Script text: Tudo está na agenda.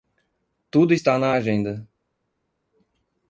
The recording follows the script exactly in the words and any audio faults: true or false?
true